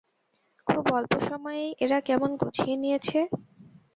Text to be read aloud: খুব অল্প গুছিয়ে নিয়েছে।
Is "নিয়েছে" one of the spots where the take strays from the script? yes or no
no